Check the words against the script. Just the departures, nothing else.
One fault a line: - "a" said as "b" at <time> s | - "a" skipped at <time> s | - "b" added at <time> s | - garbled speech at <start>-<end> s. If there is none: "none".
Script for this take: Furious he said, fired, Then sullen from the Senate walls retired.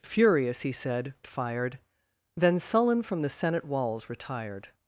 none